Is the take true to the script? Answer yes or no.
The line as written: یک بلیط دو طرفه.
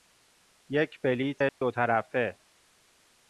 yes